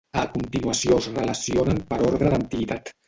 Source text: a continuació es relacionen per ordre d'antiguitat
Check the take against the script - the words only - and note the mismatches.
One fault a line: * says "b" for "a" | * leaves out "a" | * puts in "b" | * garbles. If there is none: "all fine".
all fine